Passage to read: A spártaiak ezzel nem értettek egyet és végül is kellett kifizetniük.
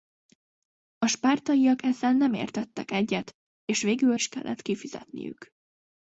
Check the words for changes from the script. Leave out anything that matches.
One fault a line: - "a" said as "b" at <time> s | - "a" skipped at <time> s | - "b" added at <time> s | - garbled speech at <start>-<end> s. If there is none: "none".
none